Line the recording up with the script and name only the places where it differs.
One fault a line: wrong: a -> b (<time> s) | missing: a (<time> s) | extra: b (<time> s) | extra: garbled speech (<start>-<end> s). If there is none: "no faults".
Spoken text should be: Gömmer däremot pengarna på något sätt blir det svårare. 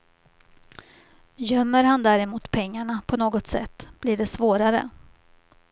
extra: han (1.8 s)